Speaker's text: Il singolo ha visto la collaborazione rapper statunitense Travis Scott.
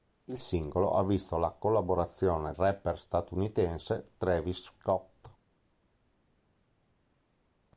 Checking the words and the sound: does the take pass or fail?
pass